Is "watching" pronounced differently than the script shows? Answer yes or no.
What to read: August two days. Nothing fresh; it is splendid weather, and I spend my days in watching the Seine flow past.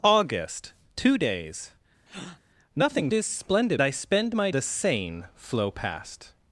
yes